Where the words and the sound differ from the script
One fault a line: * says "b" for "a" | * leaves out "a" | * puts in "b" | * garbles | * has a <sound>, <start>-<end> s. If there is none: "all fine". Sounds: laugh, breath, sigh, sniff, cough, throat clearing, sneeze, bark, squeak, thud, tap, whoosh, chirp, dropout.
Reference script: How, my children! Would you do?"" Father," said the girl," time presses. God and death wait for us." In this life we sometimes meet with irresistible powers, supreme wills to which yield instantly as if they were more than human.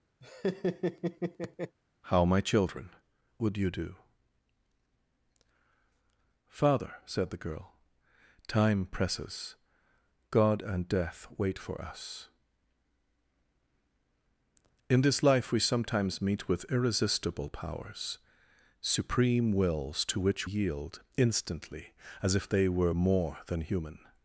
* has a laugh, 0.2-1.8 s